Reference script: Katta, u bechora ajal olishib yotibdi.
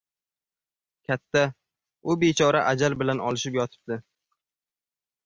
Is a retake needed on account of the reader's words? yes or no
yes